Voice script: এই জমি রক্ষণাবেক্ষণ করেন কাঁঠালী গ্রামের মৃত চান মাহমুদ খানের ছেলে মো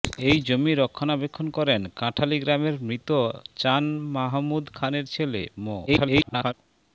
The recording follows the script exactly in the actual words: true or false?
false